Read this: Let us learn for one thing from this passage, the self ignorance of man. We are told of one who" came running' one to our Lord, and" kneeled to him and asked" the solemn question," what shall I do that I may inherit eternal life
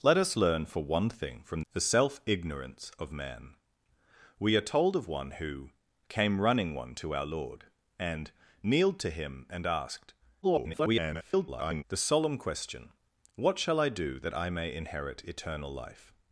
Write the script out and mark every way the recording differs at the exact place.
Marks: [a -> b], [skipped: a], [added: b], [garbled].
Let us learn for one thing from [skipped: this passage,] the self ignorance of man. We are told of one who" came running' one to our Lord, and" kneeled to him and asked" [garbled] the solemn question," what shall I do that I may inherit eternal life